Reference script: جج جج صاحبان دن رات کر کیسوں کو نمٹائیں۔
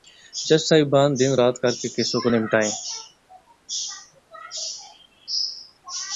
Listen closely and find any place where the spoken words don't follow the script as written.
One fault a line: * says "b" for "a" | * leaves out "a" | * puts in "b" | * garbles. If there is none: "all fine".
* leaves out "جج"
* puts in "کے"